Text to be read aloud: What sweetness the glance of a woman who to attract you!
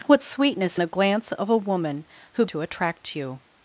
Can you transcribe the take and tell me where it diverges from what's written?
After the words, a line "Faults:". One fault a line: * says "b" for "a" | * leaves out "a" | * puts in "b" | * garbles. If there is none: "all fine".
What sweetness the glance of a woman who to attract you!
Faults:
all fine